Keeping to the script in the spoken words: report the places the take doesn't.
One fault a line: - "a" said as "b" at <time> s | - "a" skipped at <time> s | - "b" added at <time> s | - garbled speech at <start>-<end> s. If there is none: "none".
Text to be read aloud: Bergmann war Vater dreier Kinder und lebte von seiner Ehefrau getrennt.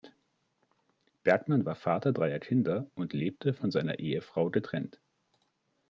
none